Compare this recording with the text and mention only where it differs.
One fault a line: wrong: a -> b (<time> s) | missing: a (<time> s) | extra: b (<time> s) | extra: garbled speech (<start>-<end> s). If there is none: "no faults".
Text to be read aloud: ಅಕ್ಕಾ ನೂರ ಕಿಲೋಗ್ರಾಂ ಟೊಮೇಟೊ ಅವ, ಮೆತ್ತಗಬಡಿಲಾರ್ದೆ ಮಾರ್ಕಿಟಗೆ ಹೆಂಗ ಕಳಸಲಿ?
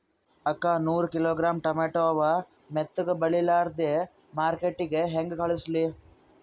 no faults